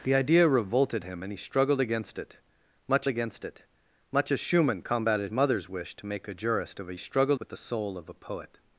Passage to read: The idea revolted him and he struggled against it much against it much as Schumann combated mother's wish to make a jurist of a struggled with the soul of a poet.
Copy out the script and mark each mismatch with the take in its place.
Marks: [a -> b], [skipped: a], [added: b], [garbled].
The idea revolted him and he struggled against it much against it much as Schumann combated mother's wish to make a jurist of a struggled with the soul of a poet.